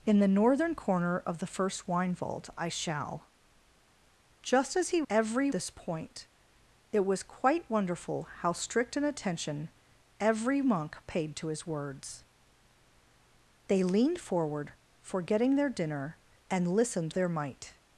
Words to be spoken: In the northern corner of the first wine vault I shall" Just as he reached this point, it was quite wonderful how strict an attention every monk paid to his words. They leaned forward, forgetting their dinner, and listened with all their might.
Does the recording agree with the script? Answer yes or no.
no